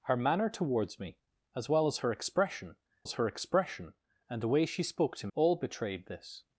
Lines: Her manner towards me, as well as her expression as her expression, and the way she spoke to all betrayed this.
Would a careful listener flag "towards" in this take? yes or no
no